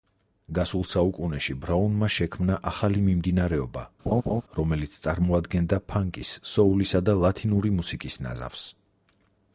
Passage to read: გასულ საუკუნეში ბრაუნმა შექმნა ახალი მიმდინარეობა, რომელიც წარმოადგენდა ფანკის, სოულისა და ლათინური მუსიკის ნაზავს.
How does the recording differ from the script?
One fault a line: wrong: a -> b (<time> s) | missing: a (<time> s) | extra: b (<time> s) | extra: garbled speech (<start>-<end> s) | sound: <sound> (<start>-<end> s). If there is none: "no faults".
sound: laugh (4.1-4.4 s)